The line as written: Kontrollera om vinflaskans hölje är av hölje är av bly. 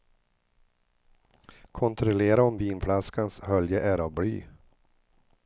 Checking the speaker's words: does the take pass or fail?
fail